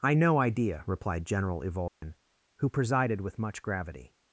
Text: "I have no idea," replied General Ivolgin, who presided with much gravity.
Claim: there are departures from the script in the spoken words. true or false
true